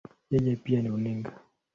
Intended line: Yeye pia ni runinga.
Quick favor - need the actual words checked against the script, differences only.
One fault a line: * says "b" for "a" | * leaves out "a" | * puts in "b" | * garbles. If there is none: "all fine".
all fine